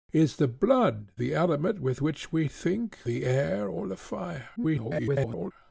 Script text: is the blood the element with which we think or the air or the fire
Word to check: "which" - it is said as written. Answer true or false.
true